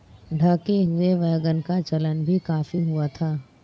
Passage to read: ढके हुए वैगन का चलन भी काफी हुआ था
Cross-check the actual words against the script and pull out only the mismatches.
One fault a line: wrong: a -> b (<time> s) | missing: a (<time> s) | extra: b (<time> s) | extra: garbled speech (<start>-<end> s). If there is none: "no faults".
no faults